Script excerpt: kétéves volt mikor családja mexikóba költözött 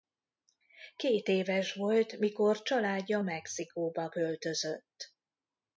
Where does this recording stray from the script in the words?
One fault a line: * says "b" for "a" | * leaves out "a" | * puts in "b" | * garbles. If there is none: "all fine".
all fine